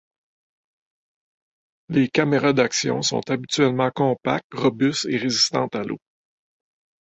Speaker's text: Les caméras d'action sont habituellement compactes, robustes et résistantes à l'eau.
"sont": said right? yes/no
yes